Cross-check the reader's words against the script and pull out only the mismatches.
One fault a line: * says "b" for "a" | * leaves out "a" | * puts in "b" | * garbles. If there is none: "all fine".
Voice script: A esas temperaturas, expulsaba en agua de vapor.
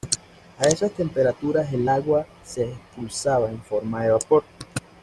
* puts in "el agua se"
* says "forma" for "agua"